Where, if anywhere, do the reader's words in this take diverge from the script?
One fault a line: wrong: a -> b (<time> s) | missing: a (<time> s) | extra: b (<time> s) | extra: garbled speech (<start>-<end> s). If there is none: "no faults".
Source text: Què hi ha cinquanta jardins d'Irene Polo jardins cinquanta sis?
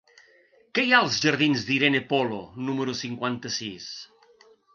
wrong: cinquanta -> als (1.1 s)
wrong: jardins -> número (2.7 s)